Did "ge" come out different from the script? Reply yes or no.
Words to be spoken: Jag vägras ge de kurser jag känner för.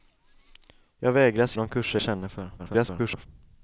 yes